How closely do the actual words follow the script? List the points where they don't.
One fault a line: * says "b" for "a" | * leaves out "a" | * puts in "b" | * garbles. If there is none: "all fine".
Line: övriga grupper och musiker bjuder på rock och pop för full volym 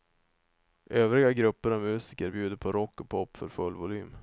all fine